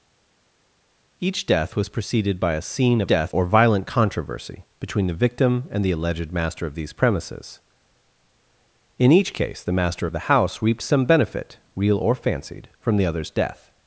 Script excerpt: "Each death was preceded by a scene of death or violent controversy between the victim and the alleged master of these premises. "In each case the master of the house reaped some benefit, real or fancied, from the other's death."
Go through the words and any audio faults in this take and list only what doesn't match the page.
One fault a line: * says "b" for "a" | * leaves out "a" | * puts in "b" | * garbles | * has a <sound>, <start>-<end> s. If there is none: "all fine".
all fine